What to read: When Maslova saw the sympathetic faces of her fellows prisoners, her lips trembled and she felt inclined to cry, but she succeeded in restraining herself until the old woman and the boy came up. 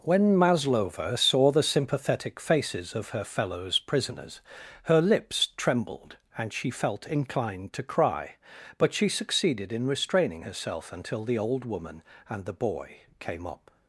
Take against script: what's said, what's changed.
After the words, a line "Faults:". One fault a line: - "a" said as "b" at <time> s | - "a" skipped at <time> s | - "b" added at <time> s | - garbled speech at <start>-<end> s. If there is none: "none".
When Maslova saw the sympathetic faces of her fellows prisoners, her lips trembled and she felt inclined to cry, but she succeeded in restraining herself until the old woman and the boy came up.
Faults:
none